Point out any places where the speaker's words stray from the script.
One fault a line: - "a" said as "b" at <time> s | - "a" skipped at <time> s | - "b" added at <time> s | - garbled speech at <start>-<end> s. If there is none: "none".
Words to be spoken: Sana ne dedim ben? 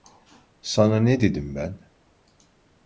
none